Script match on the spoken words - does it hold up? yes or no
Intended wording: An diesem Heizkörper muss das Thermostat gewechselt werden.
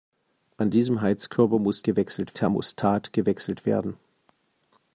no